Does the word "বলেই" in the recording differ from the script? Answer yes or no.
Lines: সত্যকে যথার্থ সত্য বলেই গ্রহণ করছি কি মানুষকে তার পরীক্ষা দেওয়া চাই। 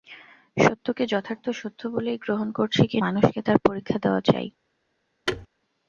no